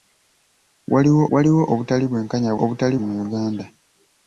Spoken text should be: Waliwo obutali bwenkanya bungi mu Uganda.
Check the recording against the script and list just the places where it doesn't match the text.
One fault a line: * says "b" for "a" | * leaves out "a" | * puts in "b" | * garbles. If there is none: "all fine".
* puts in "waliwo"
* says "obutali" for "bungi"